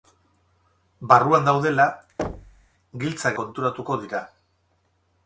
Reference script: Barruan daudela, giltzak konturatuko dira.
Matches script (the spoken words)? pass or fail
pass